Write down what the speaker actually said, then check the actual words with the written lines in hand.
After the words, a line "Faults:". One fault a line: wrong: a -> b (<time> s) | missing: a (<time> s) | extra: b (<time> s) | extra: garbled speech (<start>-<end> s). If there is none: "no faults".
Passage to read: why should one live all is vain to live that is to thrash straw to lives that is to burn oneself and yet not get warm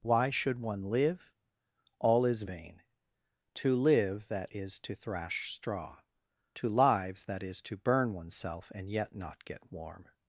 why should one live all is vain to live that is to thrash straw to lives that is to burn oneself and yet not get warm
Faults:
no faults